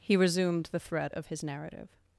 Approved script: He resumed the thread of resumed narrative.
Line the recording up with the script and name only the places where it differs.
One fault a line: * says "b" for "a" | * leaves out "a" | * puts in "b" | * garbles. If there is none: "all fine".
* says "his" for "resumed"